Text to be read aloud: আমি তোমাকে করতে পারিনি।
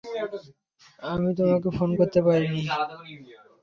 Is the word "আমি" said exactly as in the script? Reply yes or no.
yes